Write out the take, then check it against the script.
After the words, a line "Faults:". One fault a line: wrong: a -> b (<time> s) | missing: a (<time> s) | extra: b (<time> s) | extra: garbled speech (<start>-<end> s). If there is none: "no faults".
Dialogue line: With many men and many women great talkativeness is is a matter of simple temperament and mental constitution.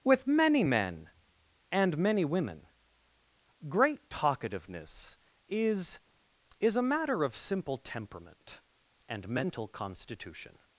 With many men and many women great talkativeness is is a matter of simple temperament and mental constitution.
Faults:
no faults